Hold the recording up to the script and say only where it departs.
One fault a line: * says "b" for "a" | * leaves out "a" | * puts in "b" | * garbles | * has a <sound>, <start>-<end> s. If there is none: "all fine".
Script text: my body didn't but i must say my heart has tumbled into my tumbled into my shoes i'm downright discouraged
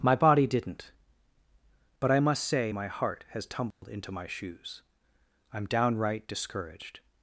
* has a dropout, 3.7-3.8 s
* leaves out "tumbled into my"